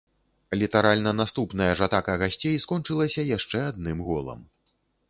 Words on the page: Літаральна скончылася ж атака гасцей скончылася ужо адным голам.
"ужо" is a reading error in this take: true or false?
true